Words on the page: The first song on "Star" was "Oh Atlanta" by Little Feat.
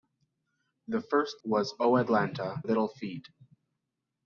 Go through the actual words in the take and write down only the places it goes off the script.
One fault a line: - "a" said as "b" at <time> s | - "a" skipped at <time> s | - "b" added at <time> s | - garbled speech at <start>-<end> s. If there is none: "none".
- "song on Star" skipped at 1.4 s
- "by" skipped at 2.6 s